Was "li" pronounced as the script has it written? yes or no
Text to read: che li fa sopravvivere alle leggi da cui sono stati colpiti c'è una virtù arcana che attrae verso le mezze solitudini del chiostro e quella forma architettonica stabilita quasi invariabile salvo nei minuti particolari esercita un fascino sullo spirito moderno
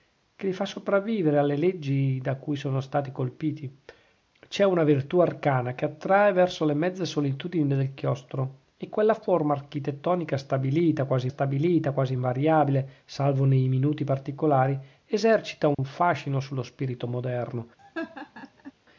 yes